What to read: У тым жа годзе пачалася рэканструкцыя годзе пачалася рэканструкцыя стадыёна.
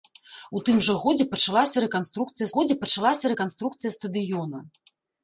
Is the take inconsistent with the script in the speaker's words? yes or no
no